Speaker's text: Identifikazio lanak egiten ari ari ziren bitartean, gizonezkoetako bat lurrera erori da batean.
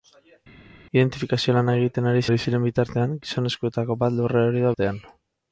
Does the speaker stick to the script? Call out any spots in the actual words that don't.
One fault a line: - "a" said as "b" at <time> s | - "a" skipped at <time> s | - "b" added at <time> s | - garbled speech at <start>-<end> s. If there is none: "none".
none